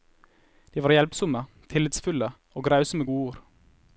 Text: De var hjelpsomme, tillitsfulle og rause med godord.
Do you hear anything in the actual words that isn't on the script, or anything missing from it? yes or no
no